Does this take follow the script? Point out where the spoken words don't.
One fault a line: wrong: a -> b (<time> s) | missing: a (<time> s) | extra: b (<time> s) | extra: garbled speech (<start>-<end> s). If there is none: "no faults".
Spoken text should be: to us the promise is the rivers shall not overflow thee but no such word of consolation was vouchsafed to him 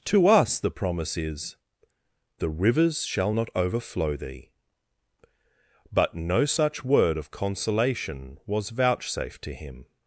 no faults